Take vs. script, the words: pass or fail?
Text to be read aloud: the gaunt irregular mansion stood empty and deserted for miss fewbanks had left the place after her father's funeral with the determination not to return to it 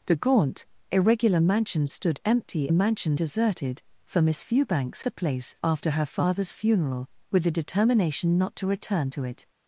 fail